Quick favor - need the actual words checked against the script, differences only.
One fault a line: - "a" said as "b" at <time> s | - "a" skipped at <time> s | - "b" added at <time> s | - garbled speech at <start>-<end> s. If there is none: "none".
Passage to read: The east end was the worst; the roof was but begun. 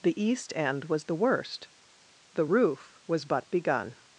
none